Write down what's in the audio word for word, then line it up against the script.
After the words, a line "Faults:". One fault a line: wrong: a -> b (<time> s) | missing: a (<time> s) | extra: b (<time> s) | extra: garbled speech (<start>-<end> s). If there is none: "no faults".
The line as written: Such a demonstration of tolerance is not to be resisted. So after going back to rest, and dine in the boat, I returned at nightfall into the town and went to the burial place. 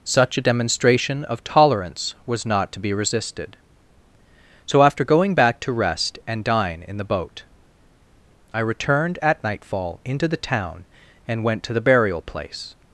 Such a demonstration of tolerance was not to be resisted. So after going back to rest, and dine in the boat, I returned at nightfall into the town and went to the burial place.
Faults:
wrong: is -> was (2.2 s)